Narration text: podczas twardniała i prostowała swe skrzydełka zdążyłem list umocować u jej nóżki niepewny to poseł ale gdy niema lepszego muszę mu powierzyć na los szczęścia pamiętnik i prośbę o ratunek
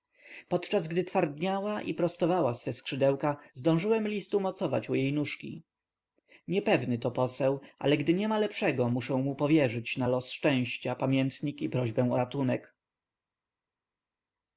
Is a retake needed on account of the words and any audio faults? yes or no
yes